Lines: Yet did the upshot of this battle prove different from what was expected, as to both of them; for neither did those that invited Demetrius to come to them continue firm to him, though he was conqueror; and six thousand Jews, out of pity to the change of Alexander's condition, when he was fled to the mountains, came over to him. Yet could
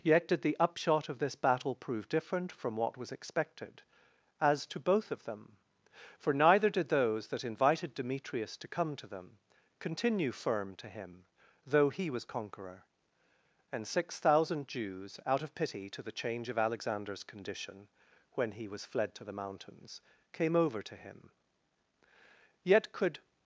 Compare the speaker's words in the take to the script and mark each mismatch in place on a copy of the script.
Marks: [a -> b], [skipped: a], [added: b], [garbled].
Yet did the upshot of this battle prove different from what was expected, as to both of them; for neither did those that invited Demetrius to come to them continue firm to him, though he was conqueror; and six thousand Jews, out of pity to the change of Alexander's condition, when he was fled to the mountains, came over to him. Yet could